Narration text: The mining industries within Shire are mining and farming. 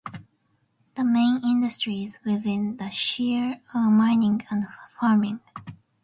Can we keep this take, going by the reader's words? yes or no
no